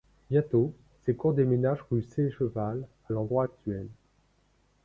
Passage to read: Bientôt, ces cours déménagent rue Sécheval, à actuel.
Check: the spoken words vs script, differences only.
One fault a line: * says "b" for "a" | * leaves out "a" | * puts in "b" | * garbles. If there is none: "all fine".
* puts in "l'endroit"